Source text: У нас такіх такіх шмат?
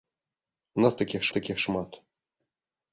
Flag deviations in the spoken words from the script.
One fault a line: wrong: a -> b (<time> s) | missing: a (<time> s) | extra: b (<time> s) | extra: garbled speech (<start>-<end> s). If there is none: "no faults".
no faults